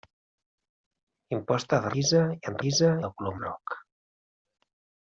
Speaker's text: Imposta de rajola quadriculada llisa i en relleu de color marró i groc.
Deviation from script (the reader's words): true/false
true